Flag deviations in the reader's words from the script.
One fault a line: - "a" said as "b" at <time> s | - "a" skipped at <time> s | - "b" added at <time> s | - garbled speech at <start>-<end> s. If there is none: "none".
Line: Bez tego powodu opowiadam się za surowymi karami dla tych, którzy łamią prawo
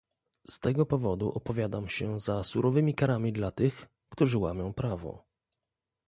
- "Bez" said as "Z" at 0.5 s